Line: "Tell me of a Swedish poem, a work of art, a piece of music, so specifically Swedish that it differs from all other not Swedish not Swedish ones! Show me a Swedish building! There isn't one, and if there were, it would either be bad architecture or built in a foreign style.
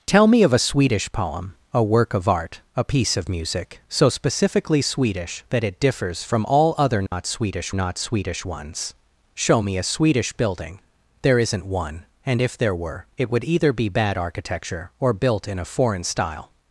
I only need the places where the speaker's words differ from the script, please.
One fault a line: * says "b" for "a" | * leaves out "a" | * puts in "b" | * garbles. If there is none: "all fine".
all fine